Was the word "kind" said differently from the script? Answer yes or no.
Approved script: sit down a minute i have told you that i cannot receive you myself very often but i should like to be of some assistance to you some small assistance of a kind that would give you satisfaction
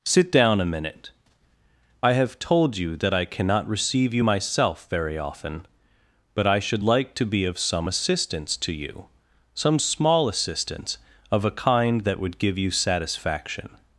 no